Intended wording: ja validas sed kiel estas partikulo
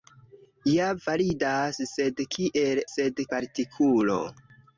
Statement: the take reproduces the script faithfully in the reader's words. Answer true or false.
false